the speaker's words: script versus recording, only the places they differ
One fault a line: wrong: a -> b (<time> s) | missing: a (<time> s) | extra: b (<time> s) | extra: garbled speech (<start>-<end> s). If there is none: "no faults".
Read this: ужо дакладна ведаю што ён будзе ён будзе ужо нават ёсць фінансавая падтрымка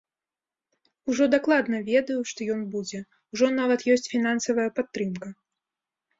missing: ён будзе (3.0 s)